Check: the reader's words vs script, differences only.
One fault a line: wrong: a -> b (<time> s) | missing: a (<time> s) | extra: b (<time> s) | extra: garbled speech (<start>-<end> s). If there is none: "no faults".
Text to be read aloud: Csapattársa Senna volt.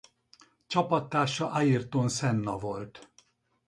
extra: Ayrton (1.5 s)